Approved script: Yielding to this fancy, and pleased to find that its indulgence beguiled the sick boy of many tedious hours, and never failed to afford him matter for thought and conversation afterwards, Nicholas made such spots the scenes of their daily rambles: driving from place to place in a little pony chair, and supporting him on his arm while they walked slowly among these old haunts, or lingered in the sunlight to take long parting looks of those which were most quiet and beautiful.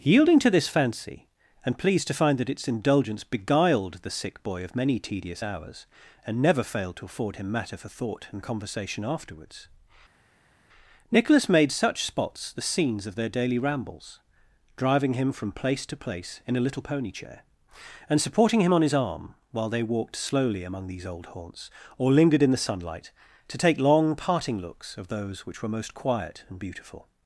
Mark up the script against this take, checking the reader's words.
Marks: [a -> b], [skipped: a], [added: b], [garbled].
Yielding to this fancy, and pleased to find that its indulgence beguiled the sick boy of many tedious hours, and never failed to afford him matter for thought and conversation afterwards, Nicholas made such spots the scenes of their daily rambles: driving [added: him] from place to place in a little pony chair, and supporting him on his arm while they walked slowly among these old haunts, or lingered in the sunlight to take long parting looks of those which were most quiet and beautiful.